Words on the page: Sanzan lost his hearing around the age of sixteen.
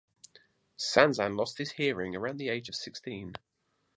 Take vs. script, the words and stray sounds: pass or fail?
pass